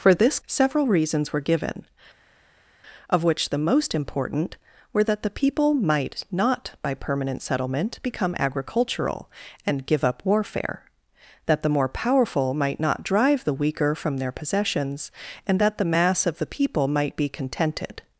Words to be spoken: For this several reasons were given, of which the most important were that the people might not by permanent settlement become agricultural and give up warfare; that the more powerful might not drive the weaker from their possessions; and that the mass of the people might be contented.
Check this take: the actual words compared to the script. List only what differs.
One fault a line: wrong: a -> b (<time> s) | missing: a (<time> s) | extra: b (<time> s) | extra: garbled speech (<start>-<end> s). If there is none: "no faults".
no faults